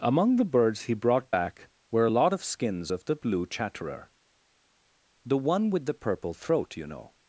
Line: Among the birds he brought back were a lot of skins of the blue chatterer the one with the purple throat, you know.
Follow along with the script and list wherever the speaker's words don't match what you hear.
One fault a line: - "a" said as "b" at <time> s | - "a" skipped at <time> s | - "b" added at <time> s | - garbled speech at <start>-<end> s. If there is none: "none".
none